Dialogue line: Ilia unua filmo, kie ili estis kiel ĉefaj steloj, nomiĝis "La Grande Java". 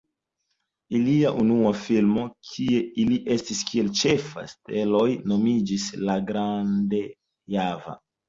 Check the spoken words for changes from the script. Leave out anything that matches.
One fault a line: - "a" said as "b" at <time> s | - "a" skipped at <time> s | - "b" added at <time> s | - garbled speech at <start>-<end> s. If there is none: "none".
none